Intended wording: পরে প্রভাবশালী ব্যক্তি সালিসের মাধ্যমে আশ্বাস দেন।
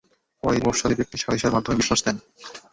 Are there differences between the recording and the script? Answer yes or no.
no